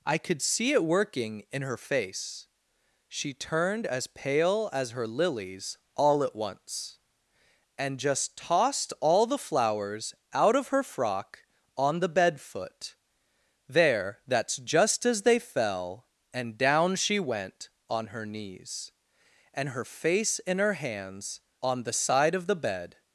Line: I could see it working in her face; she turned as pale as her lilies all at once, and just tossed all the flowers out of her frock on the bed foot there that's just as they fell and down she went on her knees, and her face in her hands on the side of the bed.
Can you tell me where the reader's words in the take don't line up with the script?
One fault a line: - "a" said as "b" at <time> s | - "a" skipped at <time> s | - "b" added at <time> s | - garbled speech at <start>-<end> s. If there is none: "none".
none